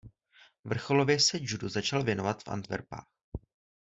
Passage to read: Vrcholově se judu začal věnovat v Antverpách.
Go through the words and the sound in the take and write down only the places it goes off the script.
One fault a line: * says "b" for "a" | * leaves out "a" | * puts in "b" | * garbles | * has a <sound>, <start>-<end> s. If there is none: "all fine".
all fine